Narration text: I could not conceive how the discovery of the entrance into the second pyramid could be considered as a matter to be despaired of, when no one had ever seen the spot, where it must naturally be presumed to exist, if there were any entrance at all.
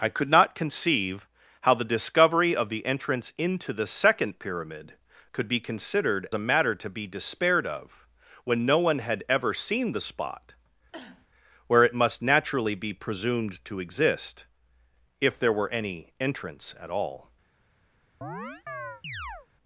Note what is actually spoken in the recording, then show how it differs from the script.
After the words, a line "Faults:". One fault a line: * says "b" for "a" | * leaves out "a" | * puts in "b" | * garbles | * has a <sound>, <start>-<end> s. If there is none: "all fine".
I could not conceive how the discovery of the entrance into the second pyramid could be considered a matter to be despaired of, when no one had ever seen the spot, where it must naturally be presumed to exist, if there were any entrance at all.
Faults:
* leaves out "as"
* has a cough, 10.9-11.3 s
* has a chirp, 18.2-19.5 s